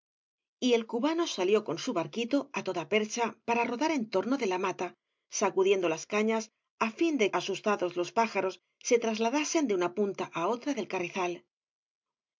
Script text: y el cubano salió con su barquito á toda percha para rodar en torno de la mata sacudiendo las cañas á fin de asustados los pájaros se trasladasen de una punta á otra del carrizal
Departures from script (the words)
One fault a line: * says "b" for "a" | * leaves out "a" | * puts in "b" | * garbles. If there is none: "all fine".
all fine